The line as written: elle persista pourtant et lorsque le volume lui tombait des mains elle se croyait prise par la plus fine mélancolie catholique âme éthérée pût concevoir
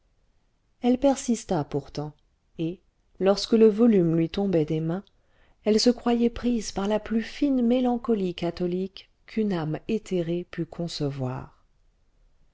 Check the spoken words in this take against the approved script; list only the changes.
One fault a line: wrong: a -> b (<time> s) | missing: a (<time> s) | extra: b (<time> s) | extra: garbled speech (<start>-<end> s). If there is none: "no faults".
extra: qu'une (9.2 s)